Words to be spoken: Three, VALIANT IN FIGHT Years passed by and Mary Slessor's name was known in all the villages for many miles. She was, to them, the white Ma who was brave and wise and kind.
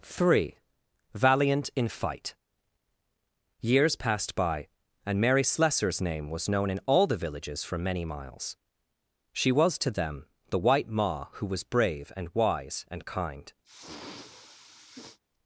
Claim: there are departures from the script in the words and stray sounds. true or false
true